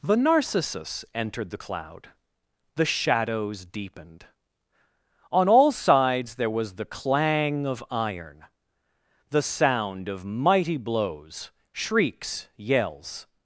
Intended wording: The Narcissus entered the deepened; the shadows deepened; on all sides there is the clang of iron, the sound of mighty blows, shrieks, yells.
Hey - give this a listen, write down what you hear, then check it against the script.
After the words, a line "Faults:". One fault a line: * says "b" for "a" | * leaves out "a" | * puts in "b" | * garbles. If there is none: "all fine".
The Narcissus entered the cloud; the shadows deepened; on all sides there was the clang of iron, the sound of mighty blows, shrieks, yells.
Faults:
* says "cloud" for "deepened"
* says "was" for "is"